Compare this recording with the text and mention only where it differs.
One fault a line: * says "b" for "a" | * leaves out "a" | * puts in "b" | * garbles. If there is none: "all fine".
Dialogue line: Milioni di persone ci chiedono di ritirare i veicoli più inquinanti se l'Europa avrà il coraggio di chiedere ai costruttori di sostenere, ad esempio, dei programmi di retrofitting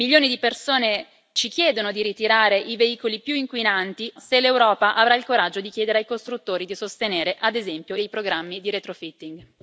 all fine